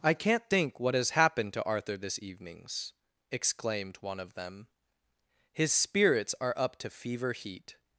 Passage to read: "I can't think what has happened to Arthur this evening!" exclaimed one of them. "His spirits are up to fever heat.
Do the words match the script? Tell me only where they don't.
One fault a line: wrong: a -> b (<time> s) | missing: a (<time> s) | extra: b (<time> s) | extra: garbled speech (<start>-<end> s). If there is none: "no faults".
wrong: evening -> evenings (2.2 s)